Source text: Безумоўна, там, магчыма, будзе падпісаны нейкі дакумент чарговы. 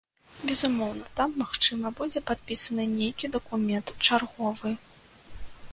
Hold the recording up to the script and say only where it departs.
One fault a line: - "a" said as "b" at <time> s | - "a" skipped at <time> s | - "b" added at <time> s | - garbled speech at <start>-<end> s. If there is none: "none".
none